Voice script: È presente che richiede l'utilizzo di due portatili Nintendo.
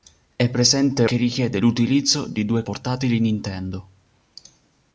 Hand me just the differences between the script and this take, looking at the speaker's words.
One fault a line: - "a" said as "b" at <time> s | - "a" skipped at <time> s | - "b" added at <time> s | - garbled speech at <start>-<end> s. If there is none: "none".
none